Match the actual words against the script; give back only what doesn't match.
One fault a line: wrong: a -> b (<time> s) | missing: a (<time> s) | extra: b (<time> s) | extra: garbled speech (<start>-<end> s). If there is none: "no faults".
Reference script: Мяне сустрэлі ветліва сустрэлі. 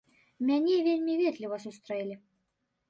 wrong: сустрэлі -> вельмі (0.9 s)